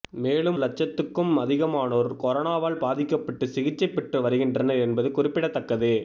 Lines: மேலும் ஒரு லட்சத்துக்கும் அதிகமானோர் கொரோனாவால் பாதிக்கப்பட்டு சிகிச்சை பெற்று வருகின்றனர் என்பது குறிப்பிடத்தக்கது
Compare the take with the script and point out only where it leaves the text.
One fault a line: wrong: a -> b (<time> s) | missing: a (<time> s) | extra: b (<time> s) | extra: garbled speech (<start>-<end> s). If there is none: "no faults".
missing: ஒரு (0.6 s)